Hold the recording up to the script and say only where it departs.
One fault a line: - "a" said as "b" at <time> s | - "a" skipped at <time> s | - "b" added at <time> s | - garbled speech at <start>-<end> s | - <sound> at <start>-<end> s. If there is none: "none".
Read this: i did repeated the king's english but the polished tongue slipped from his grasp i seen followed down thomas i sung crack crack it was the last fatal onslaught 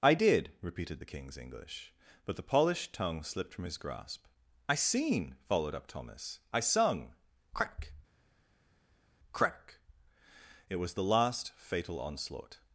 - "down" said as "up" at 5.7 s